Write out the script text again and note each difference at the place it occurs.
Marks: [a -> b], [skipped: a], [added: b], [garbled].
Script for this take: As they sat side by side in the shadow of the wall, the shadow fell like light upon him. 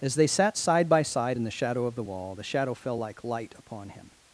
As they sat side by side in the shadow of the wall, the shadow fell like light upon him.